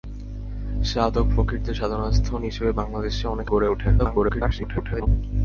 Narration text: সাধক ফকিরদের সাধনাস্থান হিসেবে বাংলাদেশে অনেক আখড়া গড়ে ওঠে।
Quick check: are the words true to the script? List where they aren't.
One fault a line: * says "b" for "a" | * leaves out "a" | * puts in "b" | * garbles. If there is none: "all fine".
* leaves out "আখড়া"
* garbles